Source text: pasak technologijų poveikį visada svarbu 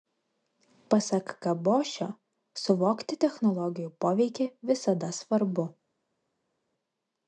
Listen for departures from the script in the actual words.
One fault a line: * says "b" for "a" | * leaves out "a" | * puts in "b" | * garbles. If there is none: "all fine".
* puts in "kabošio suvokti"